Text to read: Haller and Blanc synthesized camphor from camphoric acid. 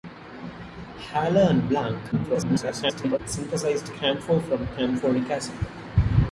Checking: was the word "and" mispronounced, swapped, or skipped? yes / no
no